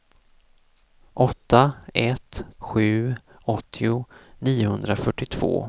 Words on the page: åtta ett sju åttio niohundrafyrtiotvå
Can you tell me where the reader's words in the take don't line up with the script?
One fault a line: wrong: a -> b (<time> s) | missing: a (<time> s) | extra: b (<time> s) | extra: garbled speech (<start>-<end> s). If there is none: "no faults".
no faults